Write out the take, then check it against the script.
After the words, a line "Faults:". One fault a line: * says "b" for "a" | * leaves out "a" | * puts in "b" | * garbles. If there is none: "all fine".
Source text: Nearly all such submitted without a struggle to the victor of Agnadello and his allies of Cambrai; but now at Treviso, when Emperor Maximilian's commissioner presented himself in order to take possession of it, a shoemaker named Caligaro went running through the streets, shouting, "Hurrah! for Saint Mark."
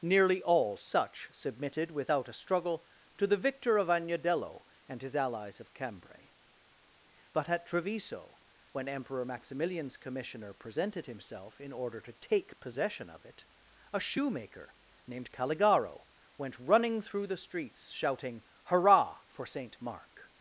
Nearly all such submitted without a struggle to the victor of Agnadello and his allies of Cambrai; but at Treviso, when Emperor Maximilian's commissioner presented himself in order to take possession of it, a shoemaker named Caligaro went running through the streets, shouting, "Hurrah! for Saint Mark."
Faults:
* leaves out "now"